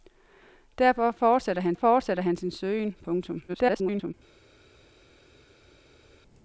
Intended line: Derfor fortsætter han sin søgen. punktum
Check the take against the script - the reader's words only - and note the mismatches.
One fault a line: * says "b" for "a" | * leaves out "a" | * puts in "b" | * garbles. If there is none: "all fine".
* puts in "fortsætter han"
* garbles